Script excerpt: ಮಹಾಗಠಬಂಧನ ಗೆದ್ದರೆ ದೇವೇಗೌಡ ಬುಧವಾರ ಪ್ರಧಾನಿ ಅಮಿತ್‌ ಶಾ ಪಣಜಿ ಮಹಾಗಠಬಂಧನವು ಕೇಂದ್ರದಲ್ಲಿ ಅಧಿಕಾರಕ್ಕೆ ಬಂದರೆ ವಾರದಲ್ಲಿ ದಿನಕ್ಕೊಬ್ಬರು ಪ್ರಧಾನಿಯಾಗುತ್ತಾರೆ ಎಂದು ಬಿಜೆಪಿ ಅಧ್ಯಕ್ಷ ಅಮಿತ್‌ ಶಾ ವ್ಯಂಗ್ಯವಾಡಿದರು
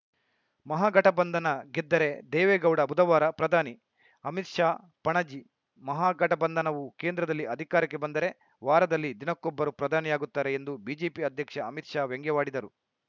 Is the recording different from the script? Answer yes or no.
no